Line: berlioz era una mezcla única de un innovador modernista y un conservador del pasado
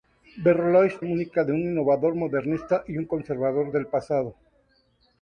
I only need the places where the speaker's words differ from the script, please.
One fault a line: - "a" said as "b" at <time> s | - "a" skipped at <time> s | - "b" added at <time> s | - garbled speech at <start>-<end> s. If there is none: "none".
- "era una mezcla" skipped at 1.0 s